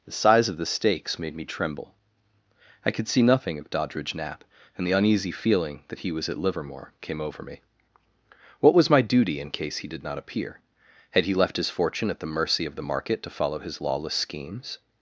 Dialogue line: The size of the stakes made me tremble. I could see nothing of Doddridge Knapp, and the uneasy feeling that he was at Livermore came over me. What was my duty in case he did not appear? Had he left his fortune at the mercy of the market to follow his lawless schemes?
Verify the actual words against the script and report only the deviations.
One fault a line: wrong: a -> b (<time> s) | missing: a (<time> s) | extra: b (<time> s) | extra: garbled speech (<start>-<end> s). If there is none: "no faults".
no faults